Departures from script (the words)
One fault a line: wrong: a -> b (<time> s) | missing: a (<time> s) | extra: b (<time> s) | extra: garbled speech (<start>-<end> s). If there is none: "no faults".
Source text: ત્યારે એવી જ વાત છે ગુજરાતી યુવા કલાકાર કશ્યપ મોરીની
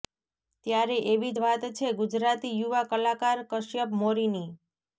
no faults